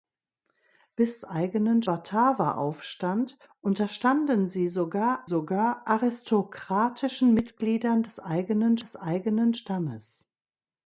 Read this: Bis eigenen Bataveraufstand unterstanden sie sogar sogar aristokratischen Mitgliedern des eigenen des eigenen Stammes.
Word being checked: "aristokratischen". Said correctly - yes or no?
yes